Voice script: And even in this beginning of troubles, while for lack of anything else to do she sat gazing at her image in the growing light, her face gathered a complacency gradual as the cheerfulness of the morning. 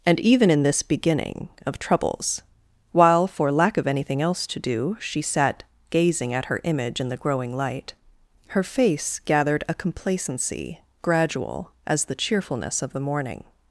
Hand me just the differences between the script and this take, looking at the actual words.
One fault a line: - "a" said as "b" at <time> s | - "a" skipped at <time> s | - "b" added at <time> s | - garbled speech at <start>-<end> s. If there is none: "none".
none